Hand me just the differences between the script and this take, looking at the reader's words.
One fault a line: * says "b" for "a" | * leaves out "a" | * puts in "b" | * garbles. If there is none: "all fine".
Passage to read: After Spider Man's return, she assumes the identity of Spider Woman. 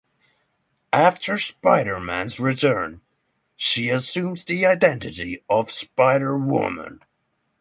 all fine